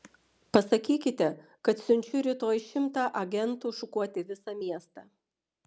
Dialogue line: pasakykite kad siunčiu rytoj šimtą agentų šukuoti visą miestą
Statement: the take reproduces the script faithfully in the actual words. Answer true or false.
true